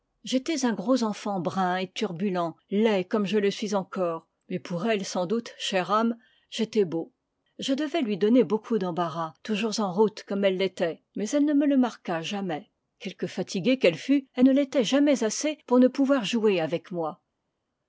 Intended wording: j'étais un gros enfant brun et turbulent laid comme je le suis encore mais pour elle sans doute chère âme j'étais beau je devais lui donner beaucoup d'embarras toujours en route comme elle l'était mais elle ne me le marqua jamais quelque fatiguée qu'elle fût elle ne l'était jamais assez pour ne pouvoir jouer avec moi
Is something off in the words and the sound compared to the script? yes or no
no